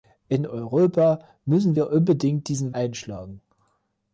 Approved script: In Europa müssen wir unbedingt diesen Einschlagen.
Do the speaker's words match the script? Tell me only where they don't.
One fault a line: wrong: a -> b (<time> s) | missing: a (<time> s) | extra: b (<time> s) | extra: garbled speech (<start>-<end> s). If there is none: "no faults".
no faults